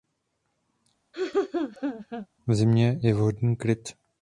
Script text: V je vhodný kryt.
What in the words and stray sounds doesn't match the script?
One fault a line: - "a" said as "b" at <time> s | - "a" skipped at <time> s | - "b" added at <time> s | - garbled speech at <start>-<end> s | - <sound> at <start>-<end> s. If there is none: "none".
- laugh at 1.1-2.3 s
- "zimě" added at 2.5 s